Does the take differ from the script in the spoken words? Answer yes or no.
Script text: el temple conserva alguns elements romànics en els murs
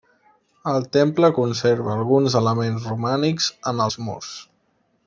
no